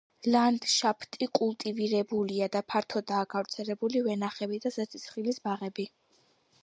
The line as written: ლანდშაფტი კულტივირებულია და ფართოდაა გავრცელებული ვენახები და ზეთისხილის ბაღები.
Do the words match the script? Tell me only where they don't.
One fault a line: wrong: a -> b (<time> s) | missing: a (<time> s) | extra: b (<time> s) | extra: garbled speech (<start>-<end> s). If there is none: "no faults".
no faults